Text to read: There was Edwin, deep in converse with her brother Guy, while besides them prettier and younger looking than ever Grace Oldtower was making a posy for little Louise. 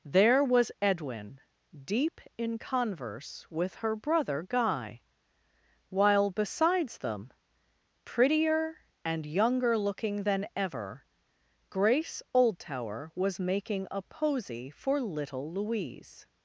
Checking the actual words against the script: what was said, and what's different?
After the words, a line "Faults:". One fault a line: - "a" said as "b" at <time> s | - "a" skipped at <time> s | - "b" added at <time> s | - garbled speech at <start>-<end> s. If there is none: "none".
There was Edwin, deep in converse with her brother Guy, while besides them prettier and younger looking than ever Grace Oldtower was making a posy for little Louise.
Faults:
none